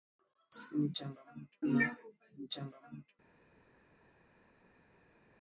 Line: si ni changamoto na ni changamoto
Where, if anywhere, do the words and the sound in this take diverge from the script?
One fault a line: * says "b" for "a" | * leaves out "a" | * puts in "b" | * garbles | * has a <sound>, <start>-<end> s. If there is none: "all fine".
all fine